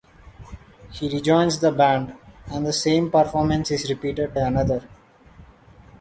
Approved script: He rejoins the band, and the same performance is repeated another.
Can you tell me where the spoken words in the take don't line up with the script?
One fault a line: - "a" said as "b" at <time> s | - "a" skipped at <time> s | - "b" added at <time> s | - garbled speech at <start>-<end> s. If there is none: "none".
none